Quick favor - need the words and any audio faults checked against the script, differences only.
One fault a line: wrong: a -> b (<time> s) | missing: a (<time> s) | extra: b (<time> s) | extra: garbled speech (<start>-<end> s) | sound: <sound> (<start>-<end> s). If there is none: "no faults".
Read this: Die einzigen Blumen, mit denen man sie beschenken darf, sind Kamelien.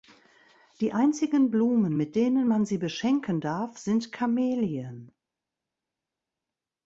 no faults